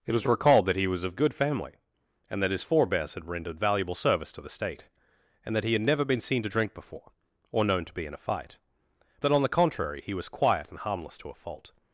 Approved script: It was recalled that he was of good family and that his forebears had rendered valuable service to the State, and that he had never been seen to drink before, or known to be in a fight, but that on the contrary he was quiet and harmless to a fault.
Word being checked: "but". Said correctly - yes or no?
no